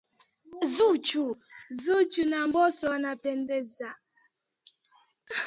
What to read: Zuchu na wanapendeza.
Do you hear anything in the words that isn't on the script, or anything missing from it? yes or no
yes